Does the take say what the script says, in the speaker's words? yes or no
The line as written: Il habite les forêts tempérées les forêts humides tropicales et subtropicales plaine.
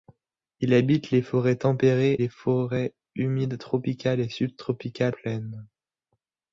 yes